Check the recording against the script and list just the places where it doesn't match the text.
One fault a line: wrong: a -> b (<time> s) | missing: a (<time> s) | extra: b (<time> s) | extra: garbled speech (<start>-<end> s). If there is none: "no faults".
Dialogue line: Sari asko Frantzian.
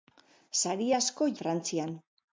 no faults